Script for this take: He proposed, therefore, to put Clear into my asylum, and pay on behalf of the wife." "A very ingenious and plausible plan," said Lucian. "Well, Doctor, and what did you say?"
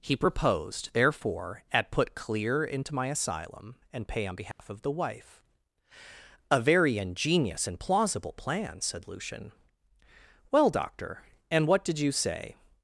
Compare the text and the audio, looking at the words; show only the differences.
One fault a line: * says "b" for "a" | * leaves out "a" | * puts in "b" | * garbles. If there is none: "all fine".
* says "at" for "to"